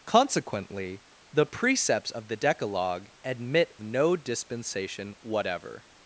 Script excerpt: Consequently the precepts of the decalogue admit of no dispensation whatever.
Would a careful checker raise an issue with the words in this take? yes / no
yes